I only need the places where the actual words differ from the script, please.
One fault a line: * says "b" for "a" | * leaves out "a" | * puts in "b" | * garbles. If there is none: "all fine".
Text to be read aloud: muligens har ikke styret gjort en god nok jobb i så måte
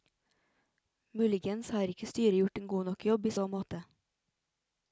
all fine